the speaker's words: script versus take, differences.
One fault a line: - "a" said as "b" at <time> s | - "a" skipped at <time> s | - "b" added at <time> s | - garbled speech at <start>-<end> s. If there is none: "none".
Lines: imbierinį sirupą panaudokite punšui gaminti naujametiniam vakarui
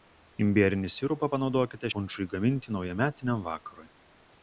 none